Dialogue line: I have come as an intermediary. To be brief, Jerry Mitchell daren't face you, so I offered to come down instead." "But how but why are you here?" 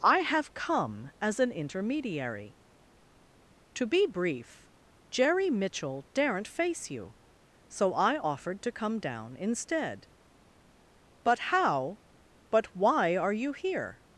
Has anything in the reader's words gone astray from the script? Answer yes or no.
no